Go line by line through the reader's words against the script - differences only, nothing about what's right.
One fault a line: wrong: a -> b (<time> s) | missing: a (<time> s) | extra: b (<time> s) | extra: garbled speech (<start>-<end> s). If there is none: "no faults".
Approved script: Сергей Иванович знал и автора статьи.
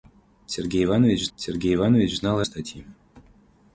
extra: сергей Иванович (1.4 s)
missing: автора (2.4 s)